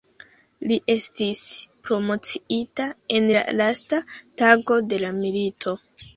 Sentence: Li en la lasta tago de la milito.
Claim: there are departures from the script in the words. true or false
true